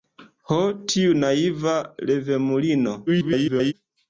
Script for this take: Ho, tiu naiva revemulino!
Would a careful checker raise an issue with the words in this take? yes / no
yes